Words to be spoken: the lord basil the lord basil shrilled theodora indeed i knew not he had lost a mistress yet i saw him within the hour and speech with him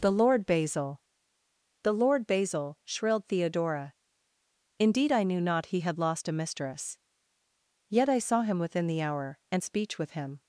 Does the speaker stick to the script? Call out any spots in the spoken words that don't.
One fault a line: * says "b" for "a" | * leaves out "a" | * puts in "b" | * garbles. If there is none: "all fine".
all fine